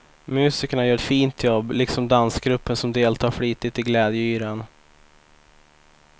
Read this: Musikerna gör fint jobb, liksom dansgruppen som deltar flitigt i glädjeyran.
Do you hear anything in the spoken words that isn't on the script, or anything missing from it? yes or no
no